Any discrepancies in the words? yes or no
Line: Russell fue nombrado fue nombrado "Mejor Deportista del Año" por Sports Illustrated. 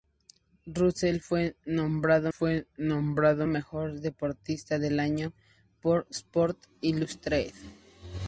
no